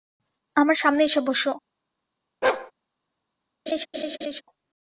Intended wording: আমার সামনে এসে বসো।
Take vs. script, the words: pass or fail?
pass